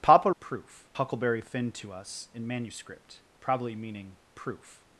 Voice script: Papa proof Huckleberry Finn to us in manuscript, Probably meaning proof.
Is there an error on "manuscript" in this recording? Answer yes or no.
no